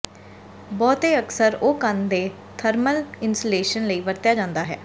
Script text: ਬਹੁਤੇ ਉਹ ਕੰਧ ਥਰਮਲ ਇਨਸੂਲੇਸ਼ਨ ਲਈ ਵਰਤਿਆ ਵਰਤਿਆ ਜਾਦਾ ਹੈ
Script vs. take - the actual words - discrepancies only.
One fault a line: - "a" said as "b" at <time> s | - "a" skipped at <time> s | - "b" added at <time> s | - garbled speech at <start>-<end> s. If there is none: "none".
- "ਅਕਸਰ" added at 1.2 s
- "ਦੇ" added at 2.1 s
- "ਵਰਤਿਆ" skipped at 4.3 s